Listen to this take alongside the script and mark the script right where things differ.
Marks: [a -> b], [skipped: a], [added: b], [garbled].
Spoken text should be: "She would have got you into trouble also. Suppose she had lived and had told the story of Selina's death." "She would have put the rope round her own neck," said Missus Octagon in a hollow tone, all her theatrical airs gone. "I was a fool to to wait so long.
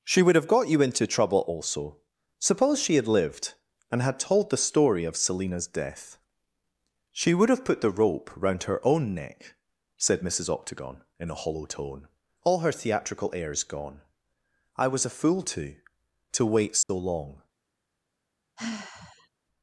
"She would have got you into trouble also. Suppose she had lived and had told the story of Selina's death." "She would have put the rope round her own neck," said Missus Octagon in a hollow tone, all her theatrical airs gone. "I was a fool to to wait so long.